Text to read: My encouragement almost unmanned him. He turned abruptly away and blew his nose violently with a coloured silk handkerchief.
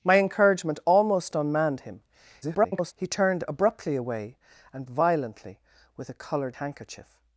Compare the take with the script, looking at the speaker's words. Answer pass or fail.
fail